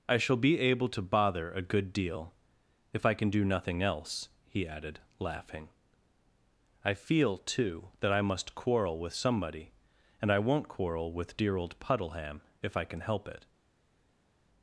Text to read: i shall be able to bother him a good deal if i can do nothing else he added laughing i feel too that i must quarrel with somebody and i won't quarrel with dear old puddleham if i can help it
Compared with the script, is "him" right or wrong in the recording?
wrong